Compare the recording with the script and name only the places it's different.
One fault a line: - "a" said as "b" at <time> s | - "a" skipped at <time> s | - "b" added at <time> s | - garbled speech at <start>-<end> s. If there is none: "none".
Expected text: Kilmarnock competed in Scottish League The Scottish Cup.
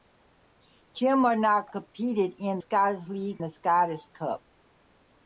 none